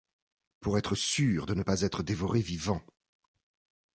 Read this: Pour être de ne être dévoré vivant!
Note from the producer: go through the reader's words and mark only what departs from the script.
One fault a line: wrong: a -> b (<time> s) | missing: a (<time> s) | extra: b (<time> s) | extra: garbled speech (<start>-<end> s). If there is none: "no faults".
extra: sûr (0.9 s)
extra: pas (1.6 s)